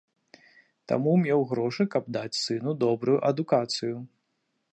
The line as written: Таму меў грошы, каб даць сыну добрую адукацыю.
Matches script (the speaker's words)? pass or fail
pass